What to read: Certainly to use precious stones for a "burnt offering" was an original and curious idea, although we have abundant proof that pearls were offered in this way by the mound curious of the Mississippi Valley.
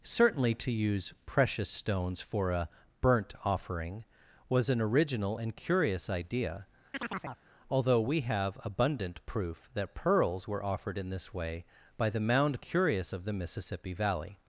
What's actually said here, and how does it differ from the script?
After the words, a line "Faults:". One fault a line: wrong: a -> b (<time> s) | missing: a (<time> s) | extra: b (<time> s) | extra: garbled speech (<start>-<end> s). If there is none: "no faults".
Certainly to use precious stones for a "burnt offering" was an original and curious idea, although we have abundant proof that pearls were offered in this way by the mound curious of the Mississippi Valley.
Faults:
no faults